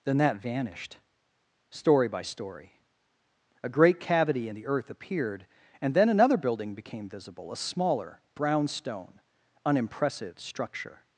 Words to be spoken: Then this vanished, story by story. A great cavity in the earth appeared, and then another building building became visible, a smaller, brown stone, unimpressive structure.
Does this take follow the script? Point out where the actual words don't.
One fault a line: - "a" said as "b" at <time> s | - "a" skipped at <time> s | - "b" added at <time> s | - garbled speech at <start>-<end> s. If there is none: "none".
- "this" said as "that" at 0.2 s
- "building" skipped at 6.7 s